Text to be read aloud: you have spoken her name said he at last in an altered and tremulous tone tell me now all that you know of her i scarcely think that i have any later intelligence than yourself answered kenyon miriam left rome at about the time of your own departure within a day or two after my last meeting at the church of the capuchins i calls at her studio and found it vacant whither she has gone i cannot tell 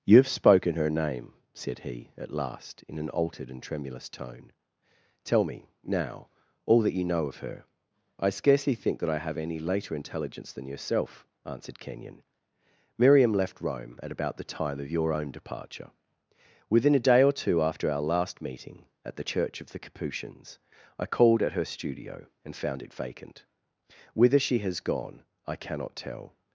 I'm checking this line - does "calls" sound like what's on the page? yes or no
no